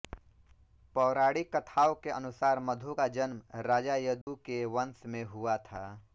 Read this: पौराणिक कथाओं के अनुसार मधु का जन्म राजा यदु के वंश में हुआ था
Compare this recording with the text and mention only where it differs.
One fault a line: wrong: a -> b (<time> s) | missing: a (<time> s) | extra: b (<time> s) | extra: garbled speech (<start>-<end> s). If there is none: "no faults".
no faults